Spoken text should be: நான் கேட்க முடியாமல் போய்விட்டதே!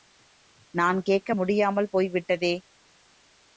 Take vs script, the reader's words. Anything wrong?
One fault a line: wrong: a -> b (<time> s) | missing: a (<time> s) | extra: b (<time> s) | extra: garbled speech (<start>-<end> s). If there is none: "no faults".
no faults